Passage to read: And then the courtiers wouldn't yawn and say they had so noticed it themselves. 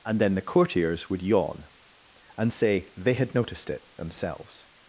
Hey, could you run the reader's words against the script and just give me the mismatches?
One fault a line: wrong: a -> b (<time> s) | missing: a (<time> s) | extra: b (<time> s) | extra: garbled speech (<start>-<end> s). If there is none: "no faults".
wrong: wouldn't -> would (1.1 s)
missing: so (3.3 s)